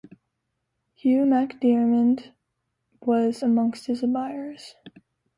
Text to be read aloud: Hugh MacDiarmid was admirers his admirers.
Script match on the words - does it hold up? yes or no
no